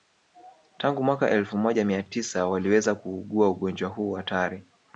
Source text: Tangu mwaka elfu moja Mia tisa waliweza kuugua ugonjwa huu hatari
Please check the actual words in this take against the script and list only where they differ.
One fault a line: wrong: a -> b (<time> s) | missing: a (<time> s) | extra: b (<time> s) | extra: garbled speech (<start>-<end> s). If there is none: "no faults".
no faults